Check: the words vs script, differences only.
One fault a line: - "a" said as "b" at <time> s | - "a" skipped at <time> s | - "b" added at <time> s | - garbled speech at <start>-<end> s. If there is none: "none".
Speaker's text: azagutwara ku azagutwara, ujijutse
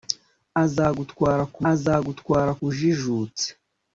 none